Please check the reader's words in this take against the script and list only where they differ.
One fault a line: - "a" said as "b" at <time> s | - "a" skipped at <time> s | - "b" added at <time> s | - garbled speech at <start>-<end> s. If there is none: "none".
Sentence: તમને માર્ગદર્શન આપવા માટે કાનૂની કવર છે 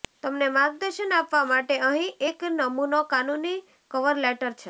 - "અહીં એક નમૂનો" added at 1.8 s
- "લેટર" added at 4.2 s